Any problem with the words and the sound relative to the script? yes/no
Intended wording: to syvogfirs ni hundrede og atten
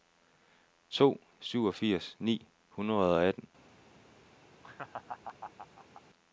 yes